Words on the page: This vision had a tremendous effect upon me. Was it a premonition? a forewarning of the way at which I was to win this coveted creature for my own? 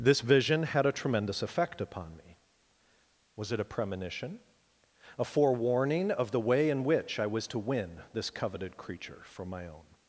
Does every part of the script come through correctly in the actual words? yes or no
no